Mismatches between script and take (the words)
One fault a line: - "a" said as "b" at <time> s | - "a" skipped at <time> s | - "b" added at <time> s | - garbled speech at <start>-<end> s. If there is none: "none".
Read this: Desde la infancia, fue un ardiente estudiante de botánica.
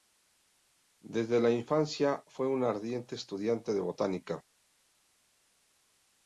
none